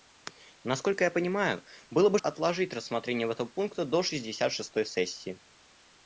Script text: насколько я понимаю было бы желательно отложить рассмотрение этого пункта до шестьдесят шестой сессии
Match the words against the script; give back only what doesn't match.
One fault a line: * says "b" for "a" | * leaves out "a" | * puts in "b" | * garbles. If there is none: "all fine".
* leaves out "желательно"